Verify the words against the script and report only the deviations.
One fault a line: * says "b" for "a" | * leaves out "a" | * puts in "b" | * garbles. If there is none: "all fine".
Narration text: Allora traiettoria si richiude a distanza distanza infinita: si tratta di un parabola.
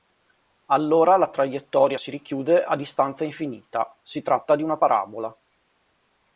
* puts in "la"
* leaves out "distanza"
* says "una" for "un"